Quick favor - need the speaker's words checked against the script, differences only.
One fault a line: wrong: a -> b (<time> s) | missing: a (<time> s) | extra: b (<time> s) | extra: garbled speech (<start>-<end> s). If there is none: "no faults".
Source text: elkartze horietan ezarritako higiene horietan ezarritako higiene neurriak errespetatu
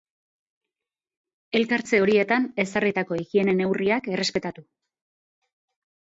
missing: horietan ezarritako higiene (3.6 s)